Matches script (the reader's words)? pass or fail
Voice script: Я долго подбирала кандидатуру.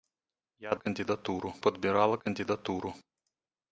fail